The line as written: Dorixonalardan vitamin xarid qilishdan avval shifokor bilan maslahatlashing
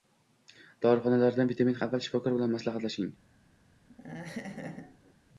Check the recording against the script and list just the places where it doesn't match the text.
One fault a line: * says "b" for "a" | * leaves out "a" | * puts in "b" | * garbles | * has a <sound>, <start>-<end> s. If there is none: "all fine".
* leaves out "xarid qilishdan"
* has a laugh, 3.9-5.1 s